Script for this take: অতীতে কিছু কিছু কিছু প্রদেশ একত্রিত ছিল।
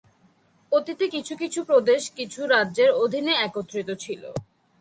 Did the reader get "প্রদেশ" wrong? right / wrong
wrong